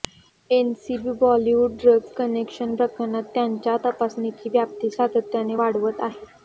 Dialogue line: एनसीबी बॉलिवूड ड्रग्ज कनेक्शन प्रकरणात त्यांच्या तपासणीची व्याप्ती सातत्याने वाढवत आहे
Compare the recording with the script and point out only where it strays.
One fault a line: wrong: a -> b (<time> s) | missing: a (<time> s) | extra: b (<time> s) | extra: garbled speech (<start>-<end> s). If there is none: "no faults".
no faults